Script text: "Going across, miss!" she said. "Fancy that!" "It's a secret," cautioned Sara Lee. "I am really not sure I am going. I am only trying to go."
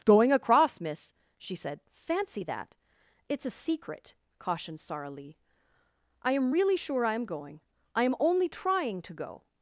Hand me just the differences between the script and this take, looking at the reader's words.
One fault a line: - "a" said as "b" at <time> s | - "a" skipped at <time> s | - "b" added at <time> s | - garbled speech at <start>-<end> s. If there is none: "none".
- "not" skipped at 6.8 s